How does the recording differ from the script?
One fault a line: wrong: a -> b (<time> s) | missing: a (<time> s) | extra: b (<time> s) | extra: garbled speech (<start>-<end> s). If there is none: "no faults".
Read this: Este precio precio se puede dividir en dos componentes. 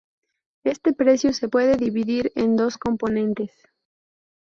missing: precio (1.3 s)